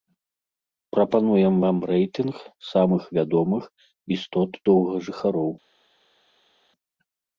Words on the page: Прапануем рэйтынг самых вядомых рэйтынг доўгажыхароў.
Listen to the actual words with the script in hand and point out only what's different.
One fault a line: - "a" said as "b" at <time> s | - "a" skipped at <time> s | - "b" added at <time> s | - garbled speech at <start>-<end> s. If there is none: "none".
- "вам" added at 1.6 s
- "рэйтынг" said as "істот" at 4.2 s